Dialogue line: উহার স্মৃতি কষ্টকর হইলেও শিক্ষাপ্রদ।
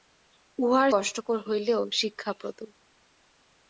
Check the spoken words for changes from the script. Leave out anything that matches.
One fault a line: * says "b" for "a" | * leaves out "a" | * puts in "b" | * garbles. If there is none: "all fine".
* leaves out "স্মৃতি"